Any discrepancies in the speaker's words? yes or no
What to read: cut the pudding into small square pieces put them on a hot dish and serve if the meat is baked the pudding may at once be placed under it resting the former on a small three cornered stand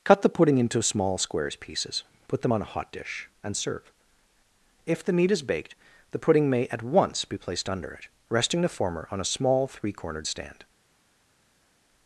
yes